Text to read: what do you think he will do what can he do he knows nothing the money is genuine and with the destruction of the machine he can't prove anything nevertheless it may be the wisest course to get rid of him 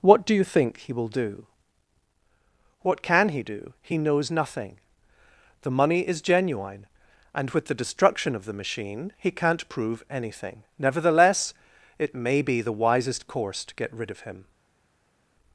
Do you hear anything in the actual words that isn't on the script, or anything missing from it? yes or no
no